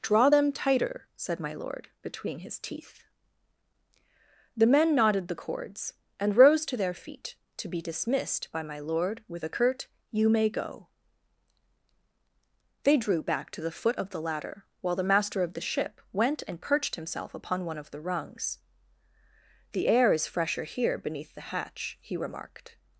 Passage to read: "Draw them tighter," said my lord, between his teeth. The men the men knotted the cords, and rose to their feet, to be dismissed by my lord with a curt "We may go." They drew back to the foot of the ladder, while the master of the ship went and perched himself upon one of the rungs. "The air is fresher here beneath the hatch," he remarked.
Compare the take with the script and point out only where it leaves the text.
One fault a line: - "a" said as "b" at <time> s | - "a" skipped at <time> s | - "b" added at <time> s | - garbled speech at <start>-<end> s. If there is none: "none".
- "the men" skipped at 4.9 s
- "We" said as "You" at 10.1 s